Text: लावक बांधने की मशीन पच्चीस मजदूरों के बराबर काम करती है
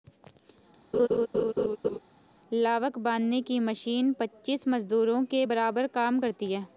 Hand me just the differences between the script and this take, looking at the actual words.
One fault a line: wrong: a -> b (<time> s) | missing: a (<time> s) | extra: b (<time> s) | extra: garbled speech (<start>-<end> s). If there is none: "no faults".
no faults